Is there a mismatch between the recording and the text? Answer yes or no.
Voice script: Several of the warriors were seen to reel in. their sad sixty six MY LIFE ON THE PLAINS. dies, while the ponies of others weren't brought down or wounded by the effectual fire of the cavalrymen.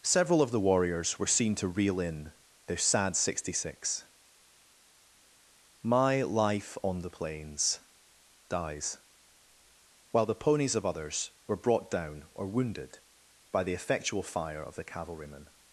yes